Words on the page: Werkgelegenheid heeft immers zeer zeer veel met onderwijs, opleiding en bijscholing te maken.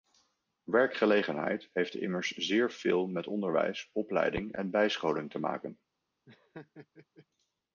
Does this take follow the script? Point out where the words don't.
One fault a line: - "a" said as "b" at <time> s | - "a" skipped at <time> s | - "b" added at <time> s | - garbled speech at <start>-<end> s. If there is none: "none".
- "zeer" skipped at 2.7 s